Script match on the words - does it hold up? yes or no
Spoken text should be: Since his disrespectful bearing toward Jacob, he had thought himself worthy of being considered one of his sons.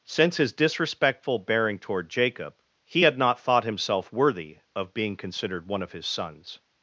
no